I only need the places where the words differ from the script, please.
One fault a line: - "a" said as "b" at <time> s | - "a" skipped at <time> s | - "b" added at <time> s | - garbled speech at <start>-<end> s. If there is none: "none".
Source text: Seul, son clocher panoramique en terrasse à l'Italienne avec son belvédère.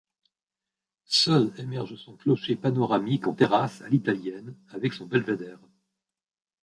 - "émerge" added at 1.6 s